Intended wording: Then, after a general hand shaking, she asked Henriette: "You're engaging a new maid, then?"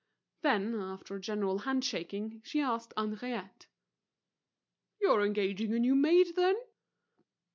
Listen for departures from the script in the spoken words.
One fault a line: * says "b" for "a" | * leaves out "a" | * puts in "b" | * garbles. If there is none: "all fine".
all fine